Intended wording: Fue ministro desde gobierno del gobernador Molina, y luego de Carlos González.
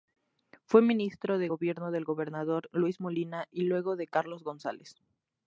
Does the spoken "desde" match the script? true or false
false